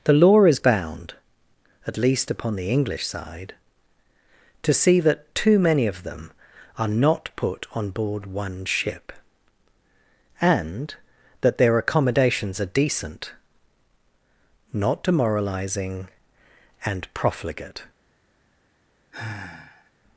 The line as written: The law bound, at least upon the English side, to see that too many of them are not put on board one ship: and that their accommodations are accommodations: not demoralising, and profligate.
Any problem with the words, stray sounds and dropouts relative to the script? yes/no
yes